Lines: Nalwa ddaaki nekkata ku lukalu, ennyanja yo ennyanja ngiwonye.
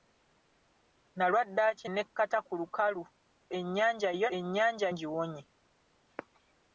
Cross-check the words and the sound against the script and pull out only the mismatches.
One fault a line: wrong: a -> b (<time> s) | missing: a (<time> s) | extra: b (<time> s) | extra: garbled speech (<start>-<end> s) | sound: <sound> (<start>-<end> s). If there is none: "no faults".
no faults